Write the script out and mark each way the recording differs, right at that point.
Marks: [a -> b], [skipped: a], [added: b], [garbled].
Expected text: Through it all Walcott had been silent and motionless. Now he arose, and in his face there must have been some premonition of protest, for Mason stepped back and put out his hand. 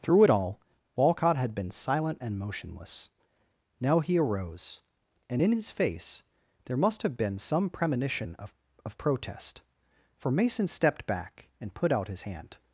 Through it all Walcott had been silent and motionless. Now he arose, and in his face there must have been some premonition of [added: of] protest, for Mason stepped back and put out his hand.